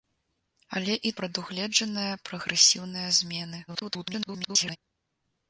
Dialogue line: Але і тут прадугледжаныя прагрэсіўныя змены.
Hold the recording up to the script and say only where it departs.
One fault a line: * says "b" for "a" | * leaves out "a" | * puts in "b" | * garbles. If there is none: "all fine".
* leaves out "тут"
* garbles